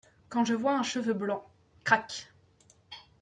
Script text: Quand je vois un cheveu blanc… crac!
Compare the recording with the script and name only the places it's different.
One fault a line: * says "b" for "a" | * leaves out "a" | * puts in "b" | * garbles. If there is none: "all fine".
all fine